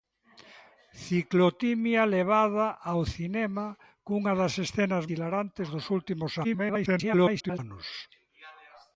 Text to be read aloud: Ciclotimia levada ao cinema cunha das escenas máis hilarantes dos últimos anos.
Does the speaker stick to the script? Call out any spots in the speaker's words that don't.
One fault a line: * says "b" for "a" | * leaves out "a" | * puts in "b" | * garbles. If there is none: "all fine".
* leaves out "máis"
* garbles